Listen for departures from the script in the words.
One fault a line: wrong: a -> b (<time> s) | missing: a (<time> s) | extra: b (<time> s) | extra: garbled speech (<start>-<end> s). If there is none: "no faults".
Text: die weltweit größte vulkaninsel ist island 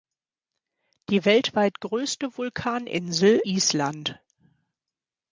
missing: ist (3.4 s)